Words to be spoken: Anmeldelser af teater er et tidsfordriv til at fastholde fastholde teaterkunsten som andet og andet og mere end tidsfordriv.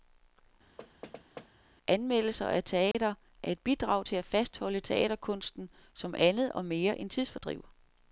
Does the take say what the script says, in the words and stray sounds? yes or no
no